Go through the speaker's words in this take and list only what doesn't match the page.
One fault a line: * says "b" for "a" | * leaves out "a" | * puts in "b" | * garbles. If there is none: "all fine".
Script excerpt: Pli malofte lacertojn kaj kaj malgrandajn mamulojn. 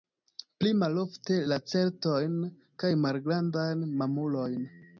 * leaves out "kaj"